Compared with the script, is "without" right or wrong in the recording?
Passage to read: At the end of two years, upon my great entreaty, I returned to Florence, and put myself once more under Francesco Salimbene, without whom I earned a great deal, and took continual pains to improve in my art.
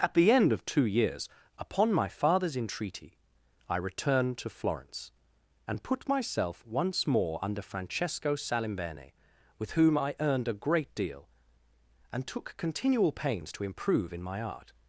wrong